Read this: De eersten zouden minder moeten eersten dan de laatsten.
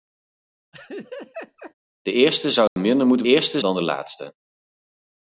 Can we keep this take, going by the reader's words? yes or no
yes